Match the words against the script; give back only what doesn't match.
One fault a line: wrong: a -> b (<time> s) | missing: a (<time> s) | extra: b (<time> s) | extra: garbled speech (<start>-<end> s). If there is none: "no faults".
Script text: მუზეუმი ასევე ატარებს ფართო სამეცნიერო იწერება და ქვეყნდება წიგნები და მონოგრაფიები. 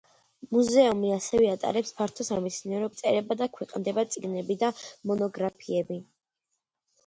no faults